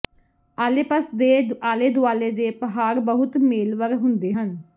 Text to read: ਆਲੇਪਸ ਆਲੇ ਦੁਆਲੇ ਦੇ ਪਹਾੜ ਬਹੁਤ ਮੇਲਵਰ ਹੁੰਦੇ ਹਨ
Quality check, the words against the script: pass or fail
fail